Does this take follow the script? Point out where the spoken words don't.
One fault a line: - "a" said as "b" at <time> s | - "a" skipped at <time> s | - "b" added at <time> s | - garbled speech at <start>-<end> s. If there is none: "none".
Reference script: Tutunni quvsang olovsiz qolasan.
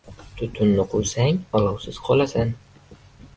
none